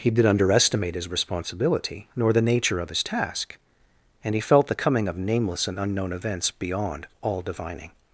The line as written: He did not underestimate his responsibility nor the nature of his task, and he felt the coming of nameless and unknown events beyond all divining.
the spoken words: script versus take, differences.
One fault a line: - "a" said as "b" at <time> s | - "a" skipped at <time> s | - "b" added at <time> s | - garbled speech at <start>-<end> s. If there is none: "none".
- "not" skipped at 0.2 s